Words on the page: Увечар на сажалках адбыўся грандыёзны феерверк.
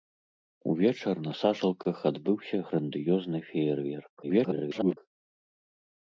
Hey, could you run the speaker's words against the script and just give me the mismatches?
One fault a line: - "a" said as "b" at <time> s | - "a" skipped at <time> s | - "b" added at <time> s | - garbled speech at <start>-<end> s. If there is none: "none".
- garbled speech at 4.2-5.0 s